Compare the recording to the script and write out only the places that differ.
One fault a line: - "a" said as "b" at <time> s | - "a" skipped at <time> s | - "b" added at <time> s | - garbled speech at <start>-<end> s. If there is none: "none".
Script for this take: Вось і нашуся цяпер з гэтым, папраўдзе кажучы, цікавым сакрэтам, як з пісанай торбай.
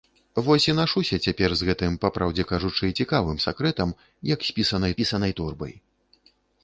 - "пісанай" added at 5.0 s